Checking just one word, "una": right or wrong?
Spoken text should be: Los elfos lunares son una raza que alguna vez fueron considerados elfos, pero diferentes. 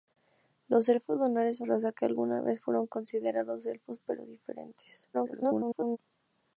wrong